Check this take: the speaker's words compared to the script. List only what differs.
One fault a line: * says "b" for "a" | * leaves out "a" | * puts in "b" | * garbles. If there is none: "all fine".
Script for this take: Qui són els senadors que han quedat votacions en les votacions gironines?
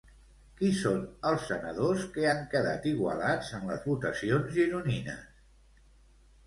* says "igualats" for "votacions"